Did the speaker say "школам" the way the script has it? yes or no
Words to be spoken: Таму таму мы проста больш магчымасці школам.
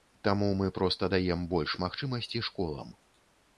yes